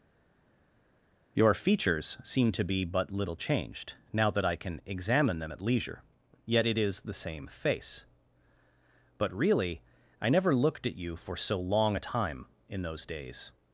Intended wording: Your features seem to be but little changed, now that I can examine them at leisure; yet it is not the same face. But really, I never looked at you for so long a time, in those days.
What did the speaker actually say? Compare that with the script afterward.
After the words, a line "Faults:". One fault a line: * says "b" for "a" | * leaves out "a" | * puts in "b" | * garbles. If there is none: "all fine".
Your features seem to be but little changed, now that I can examine them at leisure; yet it is the same face. But really, I never looked at you for so long a time, in those days.
Faults:
* leaves out "not"